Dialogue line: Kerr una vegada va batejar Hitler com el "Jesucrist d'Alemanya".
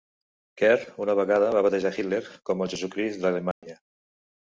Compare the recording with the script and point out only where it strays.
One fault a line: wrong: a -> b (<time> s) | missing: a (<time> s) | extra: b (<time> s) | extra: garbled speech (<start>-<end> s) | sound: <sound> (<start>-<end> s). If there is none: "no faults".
sound: dropout (3.5-3.6 s)